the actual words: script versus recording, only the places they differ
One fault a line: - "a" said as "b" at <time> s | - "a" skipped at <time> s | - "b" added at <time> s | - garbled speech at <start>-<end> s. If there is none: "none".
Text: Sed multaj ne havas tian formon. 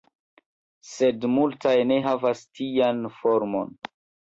none